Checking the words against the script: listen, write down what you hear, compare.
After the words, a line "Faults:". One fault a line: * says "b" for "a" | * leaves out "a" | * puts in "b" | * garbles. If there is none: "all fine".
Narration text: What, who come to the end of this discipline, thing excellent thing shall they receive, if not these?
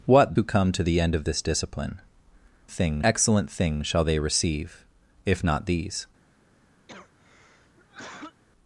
What, who come to the end of this discipline, thing excellent thing shall they receive, if not these?
Faults:
all fine